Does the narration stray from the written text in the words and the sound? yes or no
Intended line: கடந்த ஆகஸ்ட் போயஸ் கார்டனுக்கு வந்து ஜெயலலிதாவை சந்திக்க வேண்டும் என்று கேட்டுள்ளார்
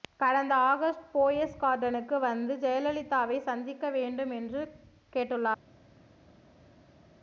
no